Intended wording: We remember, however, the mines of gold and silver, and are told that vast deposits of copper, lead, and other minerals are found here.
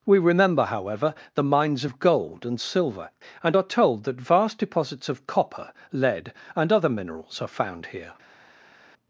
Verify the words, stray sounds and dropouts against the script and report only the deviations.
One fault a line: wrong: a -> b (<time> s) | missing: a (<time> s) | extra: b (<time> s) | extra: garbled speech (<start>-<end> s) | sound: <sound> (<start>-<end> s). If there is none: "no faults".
no faults